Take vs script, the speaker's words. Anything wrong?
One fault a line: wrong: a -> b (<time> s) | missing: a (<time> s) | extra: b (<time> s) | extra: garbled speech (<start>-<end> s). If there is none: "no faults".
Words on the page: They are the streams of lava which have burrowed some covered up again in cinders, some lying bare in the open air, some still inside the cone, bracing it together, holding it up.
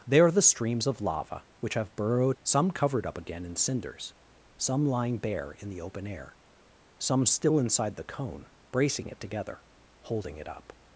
no faults